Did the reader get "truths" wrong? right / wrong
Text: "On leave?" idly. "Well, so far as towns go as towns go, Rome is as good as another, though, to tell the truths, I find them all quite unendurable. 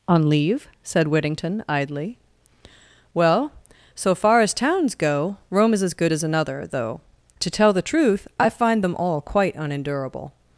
wrong